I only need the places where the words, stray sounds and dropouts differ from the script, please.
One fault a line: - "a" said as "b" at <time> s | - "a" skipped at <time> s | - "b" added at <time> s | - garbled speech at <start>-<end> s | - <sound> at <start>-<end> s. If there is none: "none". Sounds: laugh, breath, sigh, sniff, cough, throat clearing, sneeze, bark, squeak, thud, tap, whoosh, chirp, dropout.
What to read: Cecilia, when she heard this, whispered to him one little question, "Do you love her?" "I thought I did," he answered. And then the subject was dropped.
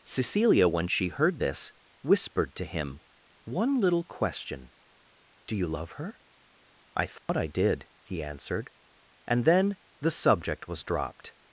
- dropout at 7.2-7.3 s